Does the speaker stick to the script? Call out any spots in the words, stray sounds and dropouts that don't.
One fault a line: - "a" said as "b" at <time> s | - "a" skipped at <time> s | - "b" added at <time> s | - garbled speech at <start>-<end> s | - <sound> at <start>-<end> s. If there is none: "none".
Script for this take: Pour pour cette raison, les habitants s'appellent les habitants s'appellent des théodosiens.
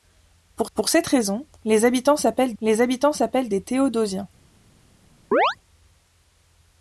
- chirp at 5.3-5.6 s